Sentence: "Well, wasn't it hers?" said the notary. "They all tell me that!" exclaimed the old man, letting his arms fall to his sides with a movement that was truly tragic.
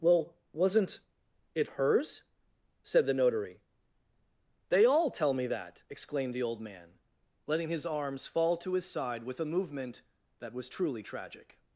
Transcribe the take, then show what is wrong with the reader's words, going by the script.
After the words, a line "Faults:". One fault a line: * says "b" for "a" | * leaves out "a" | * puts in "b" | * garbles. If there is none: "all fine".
"Well, wasn't it hers?" said the notary. "They all tell me that!" exclaimed the old man, letting his arms fall to his side with a movement that was truly tragic.
Faults:
* says "side" for "sides"